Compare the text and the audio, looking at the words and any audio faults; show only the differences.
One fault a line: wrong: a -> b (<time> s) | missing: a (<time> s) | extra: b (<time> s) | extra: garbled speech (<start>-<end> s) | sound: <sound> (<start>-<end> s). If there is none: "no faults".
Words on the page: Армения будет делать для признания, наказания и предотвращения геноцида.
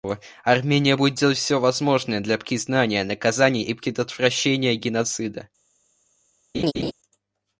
extra: все возможное (1.4 s)
sound: laugh (6.5-6.9 s)